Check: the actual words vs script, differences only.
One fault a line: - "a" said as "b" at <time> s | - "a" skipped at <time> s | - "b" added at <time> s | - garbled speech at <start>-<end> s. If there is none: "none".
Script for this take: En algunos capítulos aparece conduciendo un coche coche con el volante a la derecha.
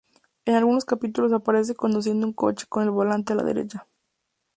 - "coche" skipped at 2.6 s